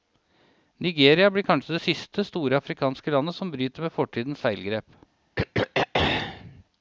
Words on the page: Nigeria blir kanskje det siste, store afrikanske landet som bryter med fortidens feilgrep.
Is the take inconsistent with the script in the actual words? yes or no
no